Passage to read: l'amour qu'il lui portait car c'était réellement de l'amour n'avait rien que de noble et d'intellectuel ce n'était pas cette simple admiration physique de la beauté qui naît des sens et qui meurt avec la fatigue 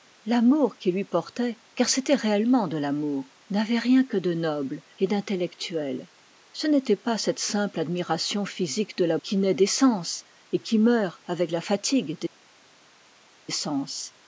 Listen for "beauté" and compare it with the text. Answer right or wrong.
wrong